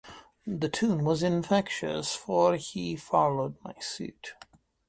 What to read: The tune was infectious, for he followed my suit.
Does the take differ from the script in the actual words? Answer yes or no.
no